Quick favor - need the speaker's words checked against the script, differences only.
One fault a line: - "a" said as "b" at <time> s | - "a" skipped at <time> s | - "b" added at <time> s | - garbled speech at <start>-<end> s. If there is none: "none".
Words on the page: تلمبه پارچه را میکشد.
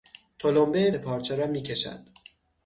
none